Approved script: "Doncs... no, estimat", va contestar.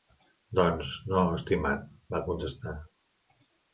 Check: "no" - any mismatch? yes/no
no